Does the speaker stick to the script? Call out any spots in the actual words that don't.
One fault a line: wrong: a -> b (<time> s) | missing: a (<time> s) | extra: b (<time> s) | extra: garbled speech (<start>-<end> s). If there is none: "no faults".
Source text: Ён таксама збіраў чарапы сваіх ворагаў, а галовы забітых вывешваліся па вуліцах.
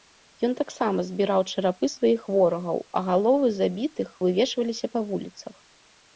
no faults